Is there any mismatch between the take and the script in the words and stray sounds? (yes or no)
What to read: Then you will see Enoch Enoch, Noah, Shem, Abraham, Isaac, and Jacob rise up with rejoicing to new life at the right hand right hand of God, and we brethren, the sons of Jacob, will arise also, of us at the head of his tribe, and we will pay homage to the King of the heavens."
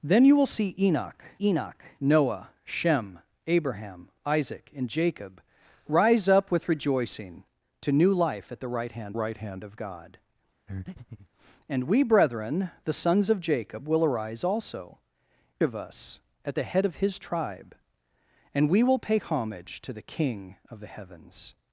yes